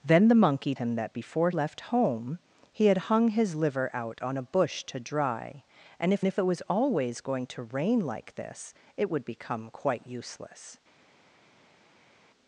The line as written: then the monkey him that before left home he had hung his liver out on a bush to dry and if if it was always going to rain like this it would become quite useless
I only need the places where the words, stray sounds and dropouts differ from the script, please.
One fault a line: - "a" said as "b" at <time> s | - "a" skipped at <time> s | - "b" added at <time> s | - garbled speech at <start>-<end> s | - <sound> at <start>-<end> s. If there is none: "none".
none